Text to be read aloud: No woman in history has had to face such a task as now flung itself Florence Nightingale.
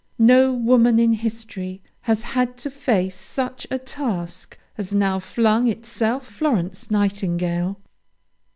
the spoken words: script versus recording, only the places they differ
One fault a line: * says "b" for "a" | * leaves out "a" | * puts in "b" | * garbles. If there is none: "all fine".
all fine